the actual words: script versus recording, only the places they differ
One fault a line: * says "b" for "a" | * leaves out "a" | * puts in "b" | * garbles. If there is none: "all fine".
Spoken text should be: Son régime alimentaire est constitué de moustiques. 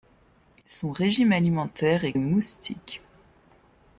* leaves out "constitué de"